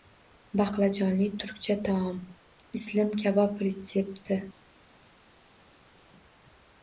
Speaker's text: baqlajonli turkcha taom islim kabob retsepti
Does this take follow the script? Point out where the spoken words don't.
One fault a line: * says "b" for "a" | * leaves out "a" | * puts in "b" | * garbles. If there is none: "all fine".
all fine